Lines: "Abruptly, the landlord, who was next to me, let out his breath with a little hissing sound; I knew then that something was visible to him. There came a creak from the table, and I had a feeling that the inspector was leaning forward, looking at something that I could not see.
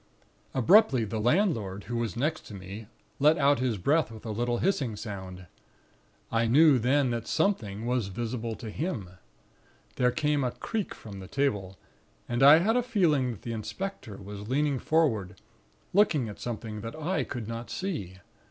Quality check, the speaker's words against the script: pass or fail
pass